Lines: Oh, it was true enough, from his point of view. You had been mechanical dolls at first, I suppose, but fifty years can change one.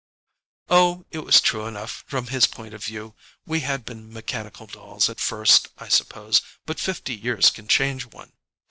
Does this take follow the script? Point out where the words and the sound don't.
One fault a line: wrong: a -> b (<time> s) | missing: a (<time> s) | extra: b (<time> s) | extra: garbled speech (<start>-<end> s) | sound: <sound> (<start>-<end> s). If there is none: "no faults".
wrong: You -> We (3.5 s)